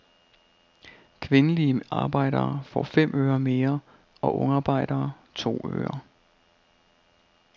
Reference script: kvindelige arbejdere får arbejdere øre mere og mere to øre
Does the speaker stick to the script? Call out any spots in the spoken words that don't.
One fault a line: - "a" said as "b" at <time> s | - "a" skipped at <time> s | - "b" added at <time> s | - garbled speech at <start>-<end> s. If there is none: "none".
- "arbejdere" said as "fem" at 2.8 s
- "mere" said as "ungarbejdere" at 4.4 s